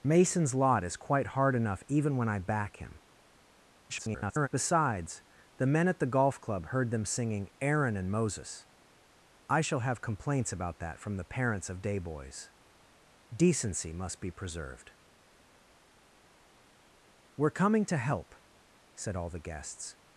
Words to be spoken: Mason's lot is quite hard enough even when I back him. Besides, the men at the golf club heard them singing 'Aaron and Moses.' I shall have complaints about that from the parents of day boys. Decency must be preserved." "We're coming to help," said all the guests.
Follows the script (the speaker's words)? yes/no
no